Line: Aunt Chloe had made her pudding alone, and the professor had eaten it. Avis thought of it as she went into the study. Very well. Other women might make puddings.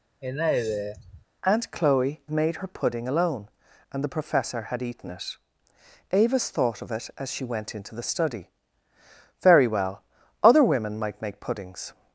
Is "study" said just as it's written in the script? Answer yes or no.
yes